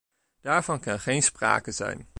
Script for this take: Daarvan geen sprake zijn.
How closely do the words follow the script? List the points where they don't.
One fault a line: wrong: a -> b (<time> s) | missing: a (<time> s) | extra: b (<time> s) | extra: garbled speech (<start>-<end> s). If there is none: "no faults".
extra: kan (0.8 s)